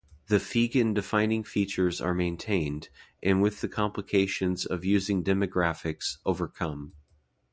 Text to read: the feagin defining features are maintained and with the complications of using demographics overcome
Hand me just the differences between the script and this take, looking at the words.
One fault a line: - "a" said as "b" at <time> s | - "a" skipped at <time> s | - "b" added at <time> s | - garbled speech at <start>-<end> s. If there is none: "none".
none